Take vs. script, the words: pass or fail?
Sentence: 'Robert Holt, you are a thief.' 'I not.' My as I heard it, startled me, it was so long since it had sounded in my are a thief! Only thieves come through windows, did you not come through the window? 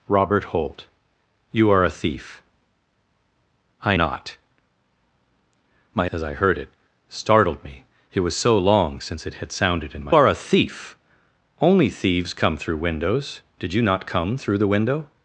pass